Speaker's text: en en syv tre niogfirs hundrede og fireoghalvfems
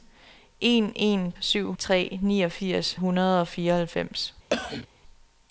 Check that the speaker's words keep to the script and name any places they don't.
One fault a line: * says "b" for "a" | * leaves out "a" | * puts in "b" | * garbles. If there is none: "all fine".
all fine